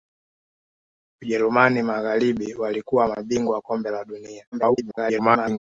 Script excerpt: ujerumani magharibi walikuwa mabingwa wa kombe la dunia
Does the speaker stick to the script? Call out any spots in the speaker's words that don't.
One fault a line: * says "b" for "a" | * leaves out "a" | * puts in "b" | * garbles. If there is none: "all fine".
* garbles